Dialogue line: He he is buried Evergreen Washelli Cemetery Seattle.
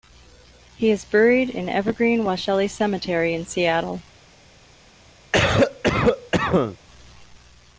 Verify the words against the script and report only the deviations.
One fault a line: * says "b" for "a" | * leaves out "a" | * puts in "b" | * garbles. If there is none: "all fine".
* leaves out "he"
* puts in "in"
* puts in "in"